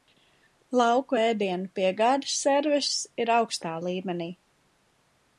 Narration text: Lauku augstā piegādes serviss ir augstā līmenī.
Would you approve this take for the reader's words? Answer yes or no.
no